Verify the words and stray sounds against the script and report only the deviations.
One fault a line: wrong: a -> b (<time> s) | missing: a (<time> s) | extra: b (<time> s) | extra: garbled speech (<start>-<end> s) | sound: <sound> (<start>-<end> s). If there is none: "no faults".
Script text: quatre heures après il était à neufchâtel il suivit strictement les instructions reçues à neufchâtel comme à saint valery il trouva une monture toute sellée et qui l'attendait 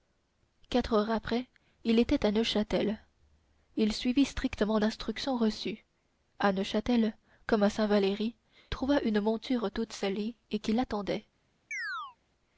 missing: les (4.8 s)
missing: il (8.3 s)
sound: chirp (11.7-12.2 s)